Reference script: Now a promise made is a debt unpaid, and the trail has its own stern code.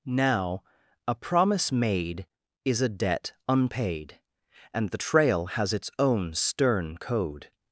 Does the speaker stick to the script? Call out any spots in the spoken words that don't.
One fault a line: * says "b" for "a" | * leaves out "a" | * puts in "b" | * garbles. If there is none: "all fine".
all fine